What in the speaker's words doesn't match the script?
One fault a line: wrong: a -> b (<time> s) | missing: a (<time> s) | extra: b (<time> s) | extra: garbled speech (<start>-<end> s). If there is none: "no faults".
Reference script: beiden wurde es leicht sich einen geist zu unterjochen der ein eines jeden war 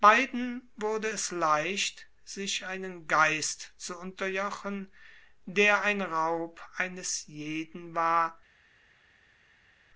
extra: raub (6.0 s)